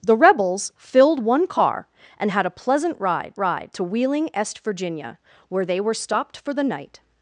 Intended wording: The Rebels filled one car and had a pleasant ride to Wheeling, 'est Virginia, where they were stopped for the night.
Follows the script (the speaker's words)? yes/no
no